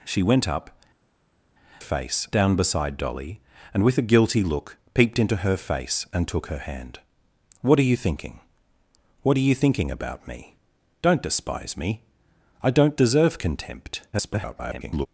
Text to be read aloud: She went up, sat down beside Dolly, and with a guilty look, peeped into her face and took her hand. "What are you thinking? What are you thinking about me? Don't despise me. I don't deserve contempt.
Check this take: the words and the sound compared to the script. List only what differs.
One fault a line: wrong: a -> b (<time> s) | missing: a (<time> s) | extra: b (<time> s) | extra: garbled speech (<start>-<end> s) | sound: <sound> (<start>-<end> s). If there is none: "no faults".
wrong: sat -> face (1.8 s)
extra: garbled speech (14.1-15.1 s)